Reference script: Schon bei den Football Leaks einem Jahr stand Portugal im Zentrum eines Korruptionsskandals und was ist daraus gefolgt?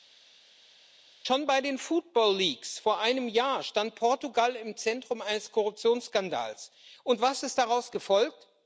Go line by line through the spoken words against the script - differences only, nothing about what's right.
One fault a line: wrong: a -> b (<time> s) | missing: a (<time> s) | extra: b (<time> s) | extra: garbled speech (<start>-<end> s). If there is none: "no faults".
extra: vor (2.8 s)